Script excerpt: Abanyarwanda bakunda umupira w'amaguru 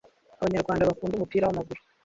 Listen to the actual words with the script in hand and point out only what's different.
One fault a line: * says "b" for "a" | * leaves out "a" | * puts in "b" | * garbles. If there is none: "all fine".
all fine